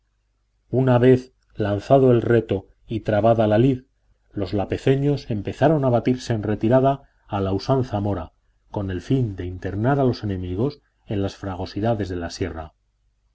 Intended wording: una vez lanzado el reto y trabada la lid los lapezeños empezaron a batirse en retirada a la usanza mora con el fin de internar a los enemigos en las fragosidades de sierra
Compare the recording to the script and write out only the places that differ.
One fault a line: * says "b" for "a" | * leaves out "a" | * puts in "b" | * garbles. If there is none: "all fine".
* puts in "la"